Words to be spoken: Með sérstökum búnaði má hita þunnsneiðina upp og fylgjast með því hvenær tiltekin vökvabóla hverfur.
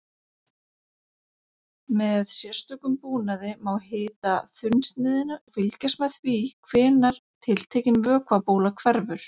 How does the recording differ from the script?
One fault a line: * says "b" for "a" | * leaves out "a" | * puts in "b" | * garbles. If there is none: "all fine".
* leaves out "upp"